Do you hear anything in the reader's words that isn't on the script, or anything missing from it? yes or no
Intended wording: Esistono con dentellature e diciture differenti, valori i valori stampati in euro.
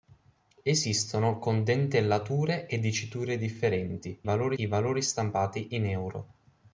no